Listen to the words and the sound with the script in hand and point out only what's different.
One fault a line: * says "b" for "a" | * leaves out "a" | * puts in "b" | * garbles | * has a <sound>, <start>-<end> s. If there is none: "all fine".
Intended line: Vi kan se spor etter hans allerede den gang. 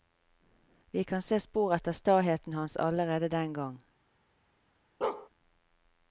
* puts in "staheten"
* has a bark, 5.0-5.3 s